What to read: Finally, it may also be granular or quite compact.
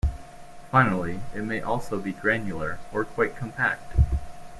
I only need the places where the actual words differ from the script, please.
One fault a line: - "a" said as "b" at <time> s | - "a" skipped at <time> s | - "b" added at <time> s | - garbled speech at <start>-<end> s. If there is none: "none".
none